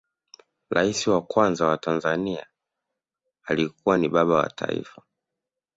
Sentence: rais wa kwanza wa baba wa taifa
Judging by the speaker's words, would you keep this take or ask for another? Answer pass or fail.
fail